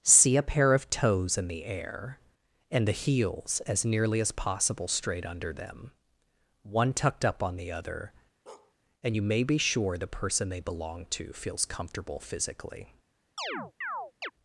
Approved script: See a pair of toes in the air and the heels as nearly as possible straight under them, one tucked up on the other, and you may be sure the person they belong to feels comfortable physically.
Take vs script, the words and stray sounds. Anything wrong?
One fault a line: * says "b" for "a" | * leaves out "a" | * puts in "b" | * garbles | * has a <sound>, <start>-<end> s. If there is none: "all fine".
* has a bark, 8.5-8.7 s
* has a chirp, 13.4-14.3 s